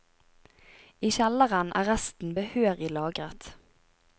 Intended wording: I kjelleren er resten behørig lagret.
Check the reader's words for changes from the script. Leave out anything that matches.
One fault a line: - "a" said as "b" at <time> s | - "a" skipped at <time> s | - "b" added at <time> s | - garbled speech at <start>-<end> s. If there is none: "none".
none